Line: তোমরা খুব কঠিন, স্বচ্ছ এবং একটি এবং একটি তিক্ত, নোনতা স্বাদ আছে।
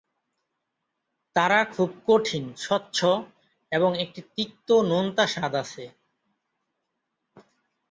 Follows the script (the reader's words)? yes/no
no